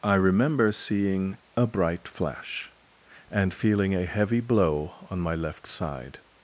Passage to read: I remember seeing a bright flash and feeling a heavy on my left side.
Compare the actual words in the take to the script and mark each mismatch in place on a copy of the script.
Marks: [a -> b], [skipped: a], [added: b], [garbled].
I remember seeing a bright flash and feeling a heavy [added: blow] on my left side.